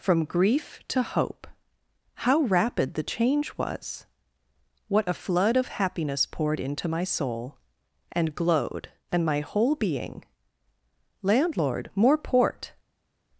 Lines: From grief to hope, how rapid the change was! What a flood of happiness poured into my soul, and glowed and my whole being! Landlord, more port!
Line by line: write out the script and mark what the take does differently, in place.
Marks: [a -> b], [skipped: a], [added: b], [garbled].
From grief to hope, how rapid the change was! What a flood of happiness poured into my soul, and glowed and my whole being! Landlord, more port!